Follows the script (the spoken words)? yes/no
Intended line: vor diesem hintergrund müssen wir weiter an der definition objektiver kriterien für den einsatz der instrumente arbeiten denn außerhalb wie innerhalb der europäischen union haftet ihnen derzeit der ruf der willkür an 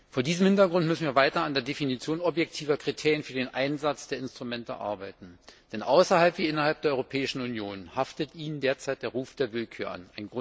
yes